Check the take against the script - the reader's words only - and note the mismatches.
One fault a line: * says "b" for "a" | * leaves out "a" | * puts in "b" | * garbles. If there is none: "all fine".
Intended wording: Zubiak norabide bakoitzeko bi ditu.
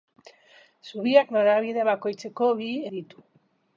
all fine